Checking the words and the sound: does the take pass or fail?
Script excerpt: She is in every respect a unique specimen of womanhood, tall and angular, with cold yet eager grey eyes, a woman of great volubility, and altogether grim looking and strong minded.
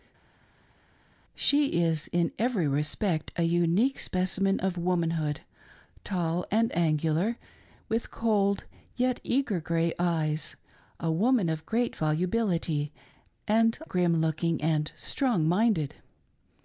fail